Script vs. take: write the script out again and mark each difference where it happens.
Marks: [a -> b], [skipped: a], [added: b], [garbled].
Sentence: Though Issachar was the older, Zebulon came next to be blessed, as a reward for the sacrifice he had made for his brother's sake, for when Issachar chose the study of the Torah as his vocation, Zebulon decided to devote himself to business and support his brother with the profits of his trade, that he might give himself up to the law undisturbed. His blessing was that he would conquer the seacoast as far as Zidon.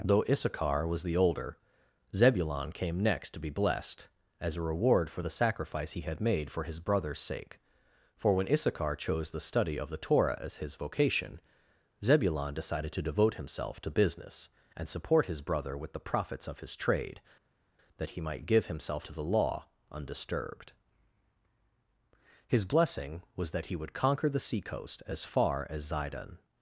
Though Issachar was the older, Zebulon came next to be blessed, as a reward for the sacrifice he had made for his brother's sake, for when Issachar chose the study of the Torah as his vocation, Zebulon decided to devote himself to business and support his brother with the profits of his trade, that he might give himself [skipped: up] to the law undisturbed. His blessing was that he would conquer the seacoast as far as Zidon.